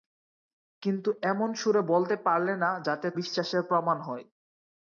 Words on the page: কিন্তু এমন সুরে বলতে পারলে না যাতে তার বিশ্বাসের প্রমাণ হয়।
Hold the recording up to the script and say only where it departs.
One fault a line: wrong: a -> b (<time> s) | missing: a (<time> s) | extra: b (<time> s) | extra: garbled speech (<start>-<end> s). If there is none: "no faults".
missing: তার (3.1 s)